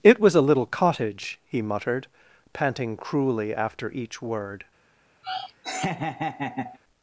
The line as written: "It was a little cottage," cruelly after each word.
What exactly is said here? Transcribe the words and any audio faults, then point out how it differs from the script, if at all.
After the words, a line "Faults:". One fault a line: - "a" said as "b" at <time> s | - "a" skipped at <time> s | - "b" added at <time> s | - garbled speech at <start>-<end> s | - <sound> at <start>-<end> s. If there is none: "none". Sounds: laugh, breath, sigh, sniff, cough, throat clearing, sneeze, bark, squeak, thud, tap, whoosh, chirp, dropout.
"It was a little cottage," he muttered, panting cruelly after each word.
Faults:
- "he muttered panting" added at 1.4 s
- laugh at 5.2-6.8 s